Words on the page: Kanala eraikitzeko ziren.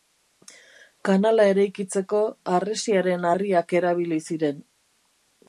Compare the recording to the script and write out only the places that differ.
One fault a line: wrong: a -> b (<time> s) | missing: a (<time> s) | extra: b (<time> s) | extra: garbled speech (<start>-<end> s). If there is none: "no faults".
extra: harresiaren harriak erabili (2.5 s)